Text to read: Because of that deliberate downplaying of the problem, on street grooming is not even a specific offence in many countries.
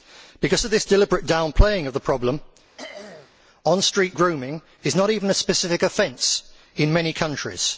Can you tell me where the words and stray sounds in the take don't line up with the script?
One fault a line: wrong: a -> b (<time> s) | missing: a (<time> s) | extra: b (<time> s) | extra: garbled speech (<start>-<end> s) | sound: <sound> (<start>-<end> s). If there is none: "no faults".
wrong: that -> this (0.7 s)
sound: throat clearing (2.8-3.3 s)